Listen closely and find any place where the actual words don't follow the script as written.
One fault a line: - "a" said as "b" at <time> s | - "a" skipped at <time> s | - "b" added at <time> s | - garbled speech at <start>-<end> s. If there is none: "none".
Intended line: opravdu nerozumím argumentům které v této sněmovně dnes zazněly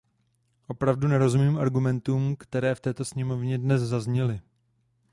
none